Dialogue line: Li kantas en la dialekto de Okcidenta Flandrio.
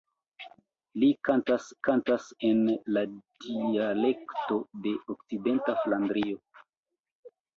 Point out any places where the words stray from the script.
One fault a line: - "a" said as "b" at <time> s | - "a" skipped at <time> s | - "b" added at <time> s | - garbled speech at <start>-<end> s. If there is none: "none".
- "kantas" added at 1.9 s